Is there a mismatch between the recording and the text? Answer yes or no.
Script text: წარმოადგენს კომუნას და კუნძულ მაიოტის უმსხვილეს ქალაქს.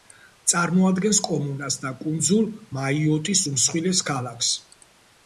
no